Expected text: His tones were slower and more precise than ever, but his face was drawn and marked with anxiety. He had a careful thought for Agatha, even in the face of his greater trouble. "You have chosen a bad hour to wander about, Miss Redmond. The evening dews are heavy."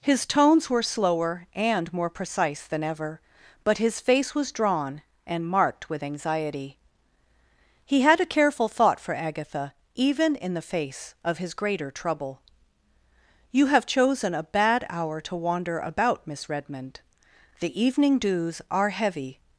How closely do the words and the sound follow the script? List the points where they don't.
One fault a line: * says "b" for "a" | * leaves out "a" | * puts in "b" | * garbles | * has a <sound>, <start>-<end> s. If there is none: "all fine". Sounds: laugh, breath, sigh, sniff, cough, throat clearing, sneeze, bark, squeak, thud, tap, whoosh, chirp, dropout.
all fine